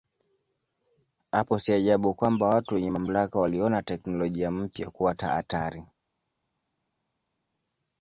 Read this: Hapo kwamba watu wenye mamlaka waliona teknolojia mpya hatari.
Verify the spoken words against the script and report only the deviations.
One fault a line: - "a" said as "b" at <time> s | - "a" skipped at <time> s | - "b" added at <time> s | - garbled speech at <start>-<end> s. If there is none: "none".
- "si ajabu" added at 1.6 s
- "kuwa" added at 4.9 s